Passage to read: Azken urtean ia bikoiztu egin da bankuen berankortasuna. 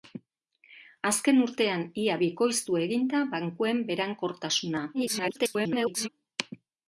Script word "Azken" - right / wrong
right